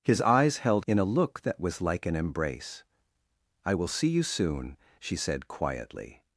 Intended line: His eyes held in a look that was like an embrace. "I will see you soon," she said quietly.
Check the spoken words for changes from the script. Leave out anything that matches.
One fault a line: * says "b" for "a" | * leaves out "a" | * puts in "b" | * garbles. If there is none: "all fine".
all fine